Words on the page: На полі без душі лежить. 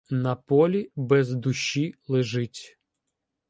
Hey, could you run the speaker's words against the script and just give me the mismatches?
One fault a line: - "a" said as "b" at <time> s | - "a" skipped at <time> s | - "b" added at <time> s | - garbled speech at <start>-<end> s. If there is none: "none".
none